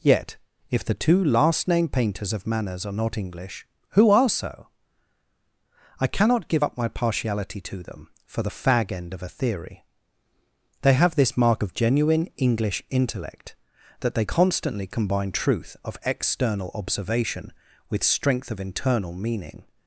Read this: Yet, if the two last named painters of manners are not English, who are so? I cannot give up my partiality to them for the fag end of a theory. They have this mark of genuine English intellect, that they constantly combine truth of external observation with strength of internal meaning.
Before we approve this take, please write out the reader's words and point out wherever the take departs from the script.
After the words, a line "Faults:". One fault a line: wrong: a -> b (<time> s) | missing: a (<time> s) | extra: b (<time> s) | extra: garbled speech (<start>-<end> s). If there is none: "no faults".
Yet, if the two last named painters of manners are not English, who are so? I cannot give up my partiality to them for the fag end of a theory. They have this mark of genuine English intellect, that they constantly combine truth of external observation with strength of internal meaning.
Faults:
no faults